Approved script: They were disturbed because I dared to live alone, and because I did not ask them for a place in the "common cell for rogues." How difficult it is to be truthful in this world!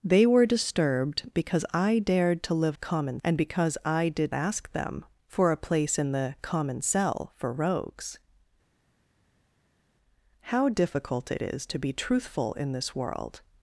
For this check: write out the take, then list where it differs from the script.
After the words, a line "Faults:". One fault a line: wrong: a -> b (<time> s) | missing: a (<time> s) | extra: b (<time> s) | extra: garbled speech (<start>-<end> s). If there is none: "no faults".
They were disturbed because I dared to live common, and because I did ask them for a place in the "common cell for rogues." How difficult it is to be truthful in this world!
Faults:
wrong: alone -> common (2.8 s)
missing: not (4.3 s)